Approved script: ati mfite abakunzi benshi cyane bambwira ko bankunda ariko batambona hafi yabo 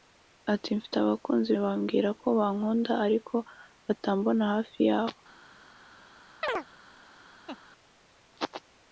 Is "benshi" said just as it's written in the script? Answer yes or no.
no